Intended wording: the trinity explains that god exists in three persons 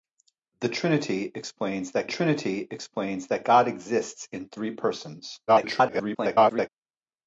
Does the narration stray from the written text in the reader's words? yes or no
yes